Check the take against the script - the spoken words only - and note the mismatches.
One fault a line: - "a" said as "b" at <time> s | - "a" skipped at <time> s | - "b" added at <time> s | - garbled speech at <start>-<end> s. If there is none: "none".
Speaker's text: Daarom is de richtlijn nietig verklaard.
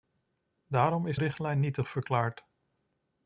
- "de" skipped at 1.2 s